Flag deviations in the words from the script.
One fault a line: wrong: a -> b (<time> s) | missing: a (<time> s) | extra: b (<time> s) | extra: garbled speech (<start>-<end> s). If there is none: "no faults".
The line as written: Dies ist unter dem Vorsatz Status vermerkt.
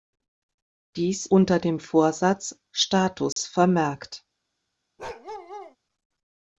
missing: ist (1.3 s)